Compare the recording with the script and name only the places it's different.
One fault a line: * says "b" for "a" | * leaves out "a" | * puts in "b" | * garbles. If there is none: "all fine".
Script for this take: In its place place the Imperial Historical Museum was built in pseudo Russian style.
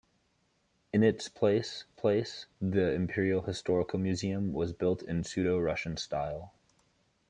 all fine